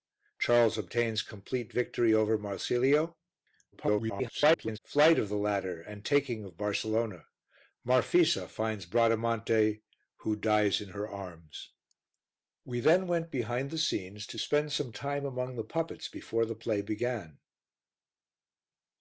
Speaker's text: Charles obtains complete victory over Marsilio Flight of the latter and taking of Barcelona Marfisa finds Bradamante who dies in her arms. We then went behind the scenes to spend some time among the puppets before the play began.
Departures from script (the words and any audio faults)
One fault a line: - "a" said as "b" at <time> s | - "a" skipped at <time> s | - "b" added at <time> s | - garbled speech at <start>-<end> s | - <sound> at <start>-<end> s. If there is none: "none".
- garbled speech at 3.7-4.8 s